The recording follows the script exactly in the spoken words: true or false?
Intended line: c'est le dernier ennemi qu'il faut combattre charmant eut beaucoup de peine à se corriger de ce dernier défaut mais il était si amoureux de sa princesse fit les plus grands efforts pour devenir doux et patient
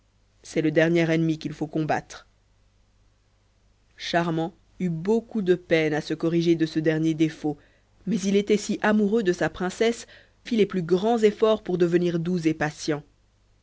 true